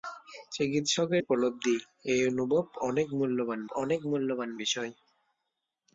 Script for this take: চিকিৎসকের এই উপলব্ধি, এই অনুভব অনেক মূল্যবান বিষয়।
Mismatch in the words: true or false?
true